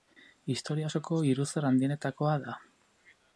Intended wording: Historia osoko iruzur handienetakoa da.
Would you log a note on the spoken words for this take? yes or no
no